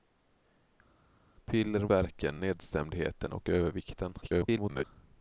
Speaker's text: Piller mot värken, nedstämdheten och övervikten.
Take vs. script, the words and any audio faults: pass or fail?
fail